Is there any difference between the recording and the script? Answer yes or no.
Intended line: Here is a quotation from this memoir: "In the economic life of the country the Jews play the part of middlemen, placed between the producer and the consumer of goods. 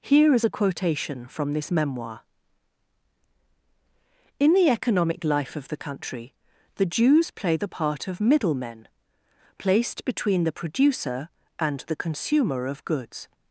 no